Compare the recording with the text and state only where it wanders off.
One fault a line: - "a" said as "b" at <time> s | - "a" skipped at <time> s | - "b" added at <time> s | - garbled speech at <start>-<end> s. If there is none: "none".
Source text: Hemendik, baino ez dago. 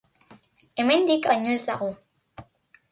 none